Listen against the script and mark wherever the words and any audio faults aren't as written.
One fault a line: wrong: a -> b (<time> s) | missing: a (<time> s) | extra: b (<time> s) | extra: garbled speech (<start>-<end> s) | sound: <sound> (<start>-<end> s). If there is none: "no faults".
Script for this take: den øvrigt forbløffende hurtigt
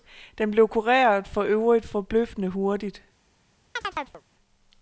extra: blev kureret for (0.5 s)
sound: chirp (3.8-4.2 s)